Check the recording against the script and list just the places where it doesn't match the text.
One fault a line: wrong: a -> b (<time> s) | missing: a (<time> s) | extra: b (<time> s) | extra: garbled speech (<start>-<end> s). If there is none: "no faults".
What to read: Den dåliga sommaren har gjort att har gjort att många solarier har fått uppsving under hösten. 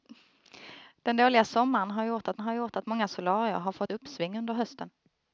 no faults